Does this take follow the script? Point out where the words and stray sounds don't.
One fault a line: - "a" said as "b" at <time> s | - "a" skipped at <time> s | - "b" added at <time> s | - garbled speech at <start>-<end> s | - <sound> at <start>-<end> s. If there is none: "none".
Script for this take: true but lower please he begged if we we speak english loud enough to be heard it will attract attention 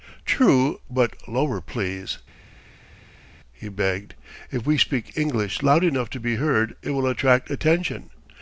- "we" skipped at 4.8 s